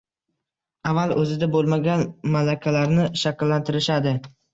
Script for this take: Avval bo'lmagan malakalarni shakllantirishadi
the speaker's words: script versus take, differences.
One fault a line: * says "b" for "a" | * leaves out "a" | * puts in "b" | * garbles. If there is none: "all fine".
* puts in "o'zida"